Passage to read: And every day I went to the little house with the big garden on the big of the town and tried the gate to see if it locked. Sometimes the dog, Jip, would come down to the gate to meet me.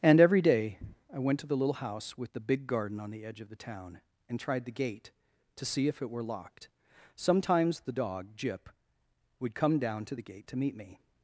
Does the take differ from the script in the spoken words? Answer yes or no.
yes